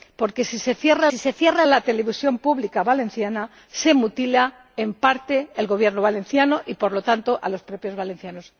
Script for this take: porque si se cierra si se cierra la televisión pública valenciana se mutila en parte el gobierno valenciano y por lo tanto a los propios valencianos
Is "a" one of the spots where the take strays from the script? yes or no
no